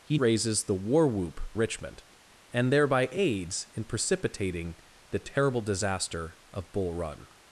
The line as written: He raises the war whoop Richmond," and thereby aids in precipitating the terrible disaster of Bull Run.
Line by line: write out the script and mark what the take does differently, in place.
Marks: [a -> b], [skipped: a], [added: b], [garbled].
He raises the war whoop Richmond," and thereby aids in precipitating the terrible disaster of Bull Run.